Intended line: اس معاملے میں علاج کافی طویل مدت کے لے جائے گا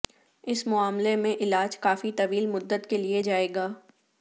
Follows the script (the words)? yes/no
yes